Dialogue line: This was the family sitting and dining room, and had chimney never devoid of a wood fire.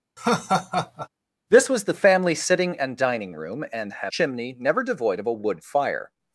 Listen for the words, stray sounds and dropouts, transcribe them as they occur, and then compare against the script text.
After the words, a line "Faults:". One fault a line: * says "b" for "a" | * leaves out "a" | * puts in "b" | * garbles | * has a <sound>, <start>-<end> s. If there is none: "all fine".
This was the family sitting and dining room, and had chimney never devoid of a wood fire.
Faults:
* has a laugh, 0.2-1.1 s